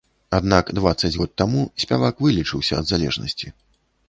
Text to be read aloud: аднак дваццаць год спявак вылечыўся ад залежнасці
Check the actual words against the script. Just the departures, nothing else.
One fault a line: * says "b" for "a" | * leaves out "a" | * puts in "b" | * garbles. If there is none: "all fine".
* puts in "таму"